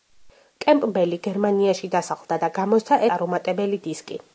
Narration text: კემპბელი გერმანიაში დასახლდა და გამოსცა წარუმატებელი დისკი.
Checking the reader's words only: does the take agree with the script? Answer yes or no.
yes